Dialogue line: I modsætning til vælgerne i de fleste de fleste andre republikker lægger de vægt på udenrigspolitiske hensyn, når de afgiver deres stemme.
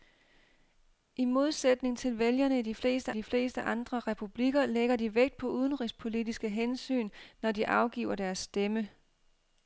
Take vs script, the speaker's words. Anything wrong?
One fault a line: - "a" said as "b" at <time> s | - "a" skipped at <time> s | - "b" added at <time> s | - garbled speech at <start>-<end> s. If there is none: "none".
none